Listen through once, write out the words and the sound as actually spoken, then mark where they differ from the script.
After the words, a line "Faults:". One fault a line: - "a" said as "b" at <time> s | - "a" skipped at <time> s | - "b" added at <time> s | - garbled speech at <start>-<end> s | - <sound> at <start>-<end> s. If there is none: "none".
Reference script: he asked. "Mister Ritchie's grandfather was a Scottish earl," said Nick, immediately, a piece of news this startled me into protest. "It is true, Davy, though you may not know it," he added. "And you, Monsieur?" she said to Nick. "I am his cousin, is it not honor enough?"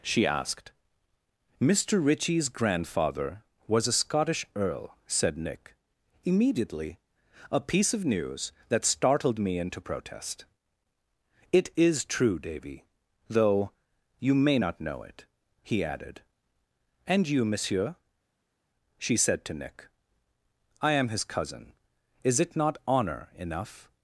she asked. "Mister Ritchie's grandfather was a Scottish earl," said Nick, immediately, a piece of news that startled me into protest. "It is true, Davy, though you may not know it," he added. "And you, Monsieur?" she said to Nick. "I am his cousin, is it not honor enough?"
Faults:
- "he" said as "she" at 0.0 s
- "this" said as "that" at 8.7 s